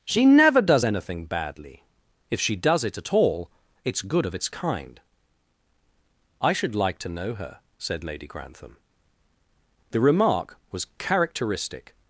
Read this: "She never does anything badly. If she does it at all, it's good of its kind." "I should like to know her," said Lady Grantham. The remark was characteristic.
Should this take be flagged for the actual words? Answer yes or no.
no